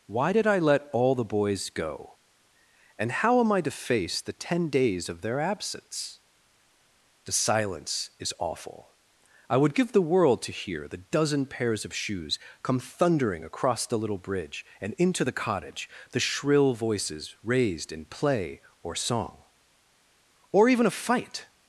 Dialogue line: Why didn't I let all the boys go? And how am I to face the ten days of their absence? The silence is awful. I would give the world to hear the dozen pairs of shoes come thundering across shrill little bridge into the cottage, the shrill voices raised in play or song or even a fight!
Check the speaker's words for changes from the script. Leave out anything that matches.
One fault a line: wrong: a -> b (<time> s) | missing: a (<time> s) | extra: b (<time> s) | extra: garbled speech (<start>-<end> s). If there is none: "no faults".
wrong: didn't -> did (0.3 s)
wrong: shrill -> the (13.8 s)
extra: and (14.8 s)